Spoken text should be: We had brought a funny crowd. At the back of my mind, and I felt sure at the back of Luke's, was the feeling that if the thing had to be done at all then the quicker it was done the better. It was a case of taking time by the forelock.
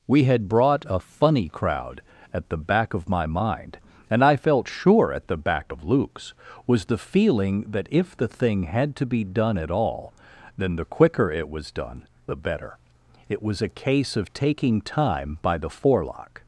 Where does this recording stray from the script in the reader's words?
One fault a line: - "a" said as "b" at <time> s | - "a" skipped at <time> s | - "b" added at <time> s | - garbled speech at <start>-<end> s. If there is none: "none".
none